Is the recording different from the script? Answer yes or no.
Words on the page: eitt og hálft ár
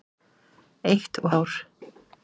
yes